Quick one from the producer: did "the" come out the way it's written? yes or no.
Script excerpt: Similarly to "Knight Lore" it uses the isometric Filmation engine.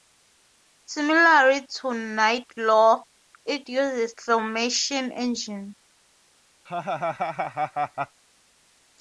no